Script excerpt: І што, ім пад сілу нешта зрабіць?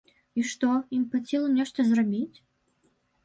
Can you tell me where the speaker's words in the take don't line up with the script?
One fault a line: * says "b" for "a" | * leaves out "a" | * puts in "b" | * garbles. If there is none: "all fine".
all fine